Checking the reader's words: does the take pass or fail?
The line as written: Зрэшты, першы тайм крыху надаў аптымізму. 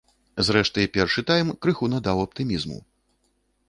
pass